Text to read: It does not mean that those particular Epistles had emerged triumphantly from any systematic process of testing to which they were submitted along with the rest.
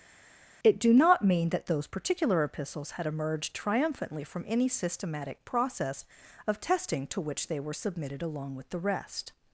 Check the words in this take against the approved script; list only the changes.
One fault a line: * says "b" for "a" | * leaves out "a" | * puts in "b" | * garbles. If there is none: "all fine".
* says "do" for "does"